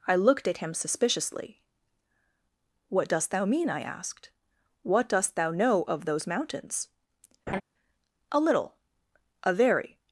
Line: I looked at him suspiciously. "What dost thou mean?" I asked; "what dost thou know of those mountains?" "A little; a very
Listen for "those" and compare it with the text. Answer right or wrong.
right